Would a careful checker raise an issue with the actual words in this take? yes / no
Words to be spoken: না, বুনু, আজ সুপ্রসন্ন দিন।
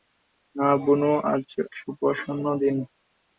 no